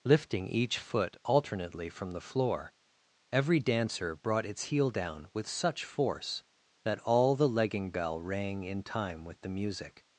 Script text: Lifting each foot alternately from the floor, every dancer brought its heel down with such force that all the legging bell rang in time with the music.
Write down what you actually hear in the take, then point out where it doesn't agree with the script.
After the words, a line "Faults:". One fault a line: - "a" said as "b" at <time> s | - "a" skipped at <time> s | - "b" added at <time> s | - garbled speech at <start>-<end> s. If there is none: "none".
Lifting each foot alternately from the floor, every dancer brought its heel down with such force that all the legging bell rang in time with the music.
Faults:
none